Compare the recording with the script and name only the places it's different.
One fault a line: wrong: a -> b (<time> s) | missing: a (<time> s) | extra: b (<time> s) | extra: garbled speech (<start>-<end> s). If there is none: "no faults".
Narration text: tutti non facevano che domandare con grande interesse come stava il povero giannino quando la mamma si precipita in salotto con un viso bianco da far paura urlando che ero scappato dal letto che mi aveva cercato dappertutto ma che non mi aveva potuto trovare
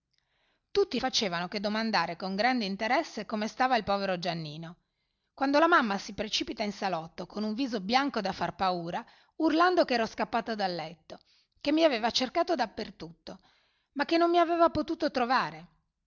missing: non (1.0 s)